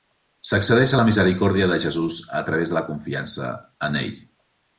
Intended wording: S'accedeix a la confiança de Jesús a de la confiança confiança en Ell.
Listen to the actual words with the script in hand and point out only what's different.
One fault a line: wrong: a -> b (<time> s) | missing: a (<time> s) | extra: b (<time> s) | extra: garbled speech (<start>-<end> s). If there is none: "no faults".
wrong: confiança -> misericòrdia (1.1 s)
extra: través (2.5 s)
missing: confiança (3.5 s)